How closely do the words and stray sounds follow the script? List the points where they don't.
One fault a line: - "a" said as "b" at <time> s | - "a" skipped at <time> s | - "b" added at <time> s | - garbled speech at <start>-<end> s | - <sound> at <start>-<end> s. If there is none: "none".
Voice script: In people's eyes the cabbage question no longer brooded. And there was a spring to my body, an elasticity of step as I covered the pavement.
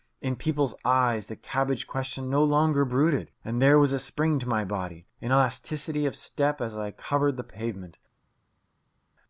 none